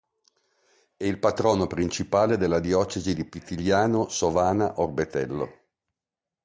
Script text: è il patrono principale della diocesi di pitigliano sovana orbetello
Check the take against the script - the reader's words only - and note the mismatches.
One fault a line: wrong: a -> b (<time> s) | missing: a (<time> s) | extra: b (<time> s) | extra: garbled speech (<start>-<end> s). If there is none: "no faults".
no faults